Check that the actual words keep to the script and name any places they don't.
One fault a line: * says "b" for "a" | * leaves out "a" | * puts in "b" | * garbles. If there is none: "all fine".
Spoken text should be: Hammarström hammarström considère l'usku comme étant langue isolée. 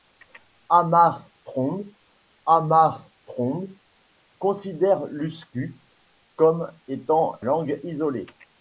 all fine